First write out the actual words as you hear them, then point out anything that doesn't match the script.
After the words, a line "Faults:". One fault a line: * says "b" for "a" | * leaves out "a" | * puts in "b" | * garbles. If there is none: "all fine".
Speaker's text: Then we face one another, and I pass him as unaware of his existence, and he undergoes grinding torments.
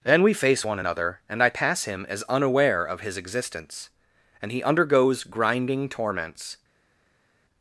Then we face one another, and I pass him as unaware of his existence, and he undergoes grinding torments.
Faults:
all fine